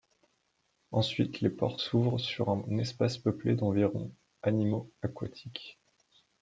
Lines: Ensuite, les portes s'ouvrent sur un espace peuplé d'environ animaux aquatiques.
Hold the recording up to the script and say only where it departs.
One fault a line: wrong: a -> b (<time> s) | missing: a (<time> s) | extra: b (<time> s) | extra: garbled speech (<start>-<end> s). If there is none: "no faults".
no faults